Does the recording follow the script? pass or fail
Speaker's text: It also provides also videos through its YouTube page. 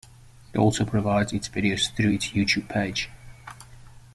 fail